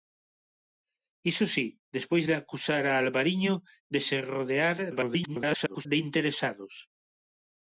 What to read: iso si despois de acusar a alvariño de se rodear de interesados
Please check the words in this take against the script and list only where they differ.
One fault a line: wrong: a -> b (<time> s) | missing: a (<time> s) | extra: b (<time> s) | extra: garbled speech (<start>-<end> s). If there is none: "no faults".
extra: garbled speech (4.9-5.9 s)